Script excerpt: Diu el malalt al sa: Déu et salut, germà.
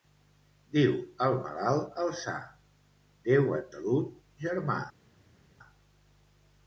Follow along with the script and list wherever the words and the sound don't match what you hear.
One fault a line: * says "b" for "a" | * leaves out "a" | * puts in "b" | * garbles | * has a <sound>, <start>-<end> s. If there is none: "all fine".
all fine